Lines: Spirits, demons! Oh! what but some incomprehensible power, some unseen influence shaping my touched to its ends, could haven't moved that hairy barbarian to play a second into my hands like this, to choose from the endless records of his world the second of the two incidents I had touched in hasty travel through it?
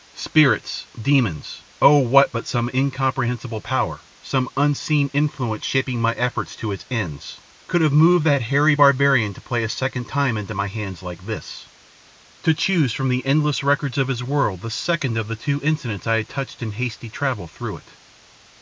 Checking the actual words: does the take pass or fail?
fail